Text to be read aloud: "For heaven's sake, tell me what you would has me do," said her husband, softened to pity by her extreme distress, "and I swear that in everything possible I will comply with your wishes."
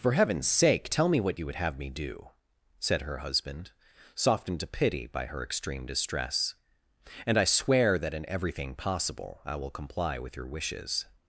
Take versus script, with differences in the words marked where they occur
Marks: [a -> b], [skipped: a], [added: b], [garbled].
"For heaven's sake, tell me what you would [has -> have] me do," said her husband, softened to pity by her extreme distress, "and I swear that in everything possible I will comply with your wishes."